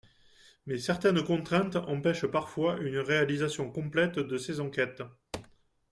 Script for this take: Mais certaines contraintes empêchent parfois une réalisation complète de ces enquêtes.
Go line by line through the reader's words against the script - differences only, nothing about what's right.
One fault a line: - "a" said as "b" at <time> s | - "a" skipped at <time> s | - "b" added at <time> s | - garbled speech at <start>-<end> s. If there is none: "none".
none